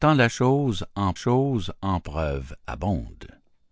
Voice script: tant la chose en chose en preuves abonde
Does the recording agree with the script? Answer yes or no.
yes